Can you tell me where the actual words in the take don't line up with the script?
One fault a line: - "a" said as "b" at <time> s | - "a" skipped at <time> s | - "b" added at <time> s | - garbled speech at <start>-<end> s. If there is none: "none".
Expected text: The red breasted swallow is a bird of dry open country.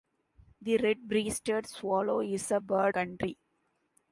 - "of dry open" skipped at 2.9 s